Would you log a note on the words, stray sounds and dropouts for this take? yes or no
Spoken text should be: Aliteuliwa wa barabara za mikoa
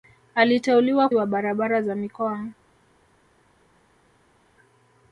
no